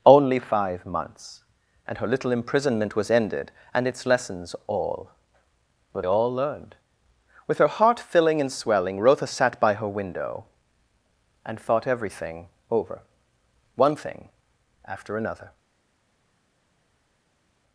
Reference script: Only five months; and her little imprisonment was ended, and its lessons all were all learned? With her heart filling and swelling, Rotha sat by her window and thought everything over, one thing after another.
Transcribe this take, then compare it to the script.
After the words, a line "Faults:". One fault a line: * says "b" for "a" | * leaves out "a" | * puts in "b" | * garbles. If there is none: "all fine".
Only five months; and her little imprisonment was ended, and its lessons all were all learned? With her heart filling and swelling, Rotha sat by her window and thought everything over, one thing after another.
Faults:
all fine